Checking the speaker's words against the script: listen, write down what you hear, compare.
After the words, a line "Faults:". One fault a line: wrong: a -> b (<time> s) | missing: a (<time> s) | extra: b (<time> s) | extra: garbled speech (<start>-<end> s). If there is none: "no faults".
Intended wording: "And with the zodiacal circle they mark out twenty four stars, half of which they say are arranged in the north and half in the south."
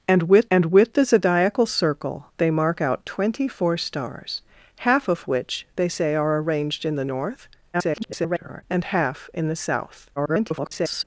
"And with and with the zodiacal circle they mark out twenty four stars, half of which they say are arranged in the north [garbled] and half in the south." [garbled]
Faults:
extra: and with (0.5 s)
extra: garbled speech (7.7-8.6 s)
extra: garbled speech (10.2-11.0 s)